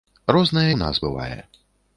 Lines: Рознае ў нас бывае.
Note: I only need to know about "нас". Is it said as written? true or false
true